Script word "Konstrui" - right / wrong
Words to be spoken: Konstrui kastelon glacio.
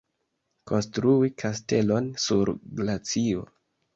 right